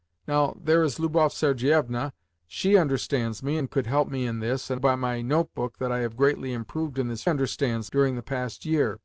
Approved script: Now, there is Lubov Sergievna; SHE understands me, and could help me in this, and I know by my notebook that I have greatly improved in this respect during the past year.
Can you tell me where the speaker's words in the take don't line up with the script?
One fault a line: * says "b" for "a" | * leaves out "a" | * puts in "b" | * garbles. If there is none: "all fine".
* leaves out "I know"
* says "understands" for "respect"